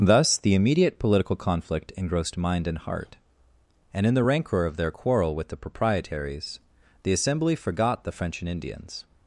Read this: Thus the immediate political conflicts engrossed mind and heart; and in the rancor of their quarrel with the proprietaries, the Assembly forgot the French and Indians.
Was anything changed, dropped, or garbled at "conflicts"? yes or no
yes